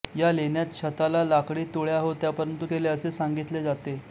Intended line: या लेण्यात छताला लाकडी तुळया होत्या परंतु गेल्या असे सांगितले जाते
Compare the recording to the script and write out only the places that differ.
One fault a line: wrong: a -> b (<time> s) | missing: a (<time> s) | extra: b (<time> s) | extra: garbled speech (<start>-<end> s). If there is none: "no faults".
no faults